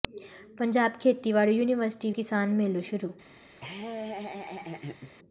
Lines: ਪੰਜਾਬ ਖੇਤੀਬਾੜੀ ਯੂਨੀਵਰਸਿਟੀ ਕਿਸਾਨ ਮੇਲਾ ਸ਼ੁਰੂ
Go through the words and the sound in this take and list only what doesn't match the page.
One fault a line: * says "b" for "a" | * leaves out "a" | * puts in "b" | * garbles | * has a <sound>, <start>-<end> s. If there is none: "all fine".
* has a laugh, 3.6-5.1 s